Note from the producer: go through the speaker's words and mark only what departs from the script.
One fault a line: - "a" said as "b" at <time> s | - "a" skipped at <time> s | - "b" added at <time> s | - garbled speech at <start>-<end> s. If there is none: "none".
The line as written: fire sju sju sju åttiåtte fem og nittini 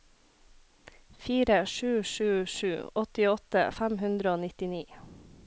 - "hundre" added at 4.1 s